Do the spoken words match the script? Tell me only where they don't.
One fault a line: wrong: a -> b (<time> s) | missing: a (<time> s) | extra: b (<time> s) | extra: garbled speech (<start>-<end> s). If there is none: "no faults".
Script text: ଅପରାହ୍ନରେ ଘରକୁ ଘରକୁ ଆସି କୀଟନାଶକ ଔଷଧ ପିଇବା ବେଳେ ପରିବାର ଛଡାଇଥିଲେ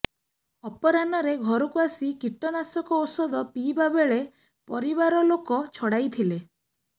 missing: ଘରକୁ (1.8 s)
extra: ଲୋକ (5.3 s)